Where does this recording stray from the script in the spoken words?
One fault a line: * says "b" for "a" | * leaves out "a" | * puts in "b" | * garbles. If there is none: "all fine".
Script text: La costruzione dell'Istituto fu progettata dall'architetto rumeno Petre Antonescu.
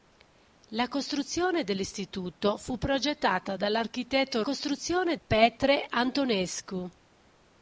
* says "costruzione" for "rumeno"